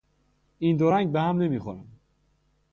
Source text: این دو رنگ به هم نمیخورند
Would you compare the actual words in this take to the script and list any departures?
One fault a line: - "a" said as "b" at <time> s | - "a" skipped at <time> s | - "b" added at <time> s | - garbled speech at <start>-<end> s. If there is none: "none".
none